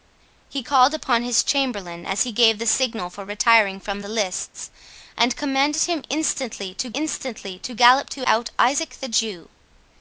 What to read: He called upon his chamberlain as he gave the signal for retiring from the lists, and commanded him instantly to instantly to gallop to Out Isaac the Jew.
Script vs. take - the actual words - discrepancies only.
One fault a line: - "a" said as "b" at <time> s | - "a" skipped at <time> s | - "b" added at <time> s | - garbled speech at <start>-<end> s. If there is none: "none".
none